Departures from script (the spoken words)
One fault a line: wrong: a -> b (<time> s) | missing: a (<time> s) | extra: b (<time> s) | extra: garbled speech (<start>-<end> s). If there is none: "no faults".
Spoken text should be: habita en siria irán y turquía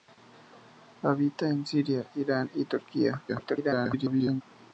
extra: garbled speech (3.3-4.4 s)